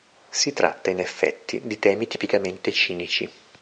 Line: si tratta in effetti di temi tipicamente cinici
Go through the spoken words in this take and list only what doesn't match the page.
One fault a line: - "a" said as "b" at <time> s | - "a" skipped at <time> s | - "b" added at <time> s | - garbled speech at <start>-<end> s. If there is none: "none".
none